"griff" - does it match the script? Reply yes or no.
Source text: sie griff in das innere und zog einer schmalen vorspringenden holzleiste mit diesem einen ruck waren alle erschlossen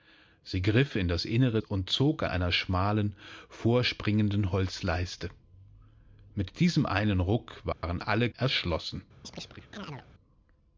yes